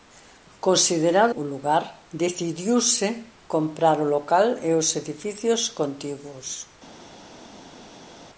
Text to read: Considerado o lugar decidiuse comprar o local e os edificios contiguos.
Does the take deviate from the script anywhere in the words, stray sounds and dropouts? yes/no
no